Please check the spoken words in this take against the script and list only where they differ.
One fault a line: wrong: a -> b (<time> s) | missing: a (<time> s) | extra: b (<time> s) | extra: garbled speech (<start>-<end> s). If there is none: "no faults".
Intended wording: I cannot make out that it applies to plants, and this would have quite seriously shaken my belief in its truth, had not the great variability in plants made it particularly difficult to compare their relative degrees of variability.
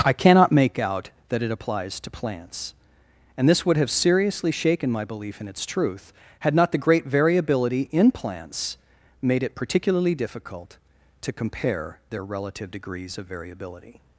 missing: quite (3.9 s)